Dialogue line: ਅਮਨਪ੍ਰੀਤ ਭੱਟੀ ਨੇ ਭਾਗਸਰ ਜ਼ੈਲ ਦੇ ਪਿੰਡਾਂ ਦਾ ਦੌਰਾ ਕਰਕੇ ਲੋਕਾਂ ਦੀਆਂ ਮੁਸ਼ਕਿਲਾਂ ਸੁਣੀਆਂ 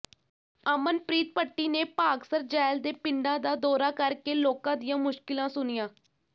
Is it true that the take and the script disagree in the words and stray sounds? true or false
false